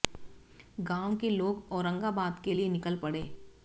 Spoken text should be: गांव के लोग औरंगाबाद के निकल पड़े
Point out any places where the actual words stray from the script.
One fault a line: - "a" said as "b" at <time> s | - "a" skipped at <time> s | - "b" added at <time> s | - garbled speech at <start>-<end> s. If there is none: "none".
- "लिए" added at 2.5 s